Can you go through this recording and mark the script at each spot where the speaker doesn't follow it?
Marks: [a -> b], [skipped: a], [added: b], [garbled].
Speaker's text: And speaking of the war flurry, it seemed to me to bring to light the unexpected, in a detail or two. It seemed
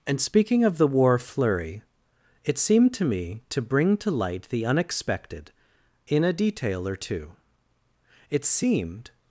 And speaking of the war flurry, it seemed to me to bring to light the unexpected, in a detail or two. It seemed